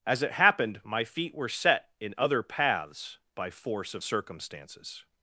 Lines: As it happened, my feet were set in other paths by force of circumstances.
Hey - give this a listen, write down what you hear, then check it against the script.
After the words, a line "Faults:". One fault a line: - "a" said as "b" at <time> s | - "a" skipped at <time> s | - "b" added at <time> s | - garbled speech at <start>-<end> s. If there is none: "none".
As it happened, my feet were set in other paths by force of circumstances.
Faults:
none